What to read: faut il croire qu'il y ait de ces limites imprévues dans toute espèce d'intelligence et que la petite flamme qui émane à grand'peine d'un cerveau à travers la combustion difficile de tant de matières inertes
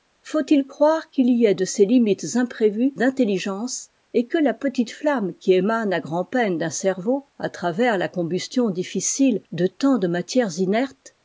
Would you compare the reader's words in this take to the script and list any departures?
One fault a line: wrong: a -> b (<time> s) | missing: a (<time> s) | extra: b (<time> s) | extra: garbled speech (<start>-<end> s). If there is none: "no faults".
missing: dans toute espèce (3.0 s)